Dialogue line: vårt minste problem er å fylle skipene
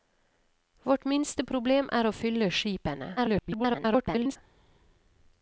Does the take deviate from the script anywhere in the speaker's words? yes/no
yes